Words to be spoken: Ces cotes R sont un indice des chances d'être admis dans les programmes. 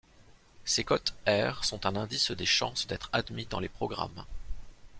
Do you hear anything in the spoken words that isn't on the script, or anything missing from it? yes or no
no